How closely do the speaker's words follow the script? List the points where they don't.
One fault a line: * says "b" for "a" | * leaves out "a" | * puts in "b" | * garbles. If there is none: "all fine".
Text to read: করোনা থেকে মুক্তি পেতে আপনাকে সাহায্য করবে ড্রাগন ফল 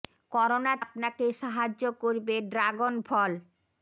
* leaves out "থেকে মুক্তি পেতে"